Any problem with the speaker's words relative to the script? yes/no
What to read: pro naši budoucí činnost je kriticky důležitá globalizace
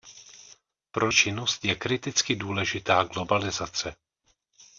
yes